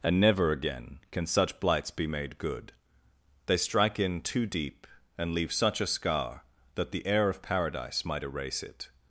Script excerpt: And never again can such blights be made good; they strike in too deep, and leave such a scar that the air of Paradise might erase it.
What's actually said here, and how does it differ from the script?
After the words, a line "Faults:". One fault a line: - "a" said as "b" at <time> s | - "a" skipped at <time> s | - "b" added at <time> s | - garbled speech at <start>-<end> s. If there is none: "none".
And never again can such blights be made good; they strike in too deep, and leave such a scar that the air of Paradise might erase it.
Faults:
none